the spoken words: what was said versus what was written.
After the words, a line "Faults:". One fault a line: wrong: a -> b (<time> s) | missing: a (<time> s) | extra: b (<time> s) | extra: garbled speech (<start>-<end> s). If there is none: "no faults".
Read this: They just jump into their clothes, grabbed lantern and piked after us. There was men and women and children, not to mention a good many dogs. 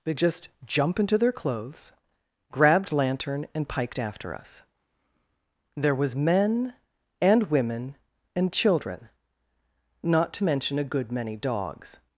They just jump into their clothes, grabbed lantern and piked after us. There was men and women and children, not to mention a good many dogs.
Faults:
no faults